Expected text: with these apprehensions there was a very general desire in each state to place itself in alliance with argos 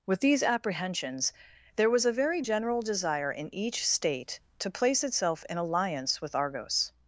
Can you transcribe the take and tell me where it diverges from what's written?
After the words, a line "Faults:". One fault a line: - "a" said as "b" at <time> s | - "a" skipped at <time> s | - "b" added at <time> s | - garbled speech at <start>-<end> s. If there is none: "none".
with these apprehensions there was a very general desire in each state to place itself in alliance with argos
Faults:
none